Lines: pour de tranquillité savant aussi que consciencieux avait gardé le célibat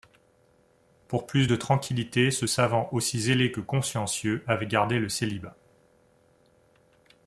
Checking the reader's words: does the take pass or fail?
fail